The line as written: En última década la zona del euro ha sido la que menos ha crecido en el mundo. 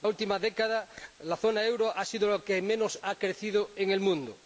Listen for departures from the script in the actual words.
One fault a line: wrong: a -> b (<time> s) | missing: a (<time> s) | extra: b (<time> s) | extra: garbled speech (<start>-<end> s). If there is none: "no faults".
no faults